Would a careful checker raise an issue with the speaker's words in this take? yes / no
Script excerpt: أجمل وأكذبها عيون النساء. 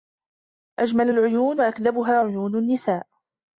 yes